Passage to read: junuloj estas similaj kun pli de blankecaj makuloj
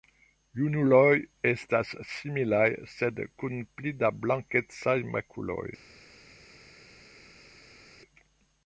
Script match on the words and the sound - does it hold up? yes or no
no